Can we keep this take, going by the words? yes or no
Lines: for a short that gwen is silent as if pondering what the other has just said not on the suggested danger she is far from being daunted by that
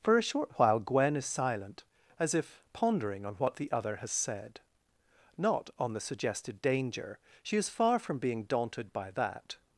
no